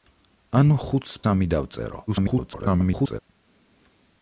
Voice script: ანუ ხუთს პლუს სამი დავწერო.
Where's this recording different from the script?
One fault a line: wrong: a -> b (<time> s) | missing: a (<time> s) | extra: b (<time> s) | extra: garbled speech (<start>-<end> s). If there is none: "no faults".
missing: პლუს (1.1 s)
extra: garbled speech (2.1-3.2 s)